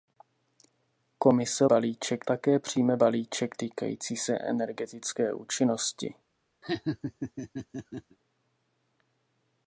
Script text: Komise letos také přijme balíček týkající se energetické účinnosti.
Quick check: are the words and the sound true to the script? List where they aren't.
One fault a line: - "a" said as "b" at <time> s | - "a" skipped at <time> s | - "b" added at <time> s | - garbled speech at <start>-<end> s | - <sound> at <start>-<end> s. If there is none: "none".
- "letos" said as "balíček" at 1.6 s
- laugh at 6.6-8.2 s